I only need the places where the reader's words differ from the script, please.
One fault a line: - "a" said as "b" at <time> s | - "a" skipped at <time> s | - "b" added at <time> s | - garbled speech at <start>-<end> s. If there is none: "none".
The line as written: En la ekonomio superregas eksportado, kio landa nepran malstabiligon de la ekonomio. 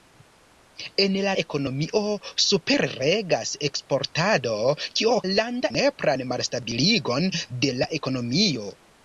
none